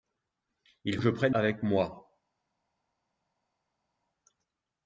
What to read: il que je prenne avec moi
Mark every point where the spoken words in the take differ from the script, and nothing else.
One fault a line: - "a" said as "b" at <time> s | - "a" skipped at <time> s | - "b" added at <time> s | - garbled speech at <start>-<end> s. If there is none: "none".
none